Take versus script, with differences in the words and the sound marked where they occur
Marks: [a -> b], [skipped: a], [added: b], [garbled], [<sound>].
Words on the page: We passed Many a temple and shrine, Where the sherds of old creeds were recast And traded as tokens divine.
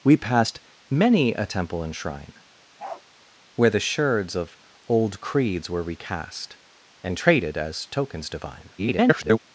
We passed Many a temple and shrine, [bark] Where the sherds of old creeds were recast And traded as tokens divine. [garbled]